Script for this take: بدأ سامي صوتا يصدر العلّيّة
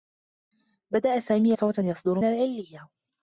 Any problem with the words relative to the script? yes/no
no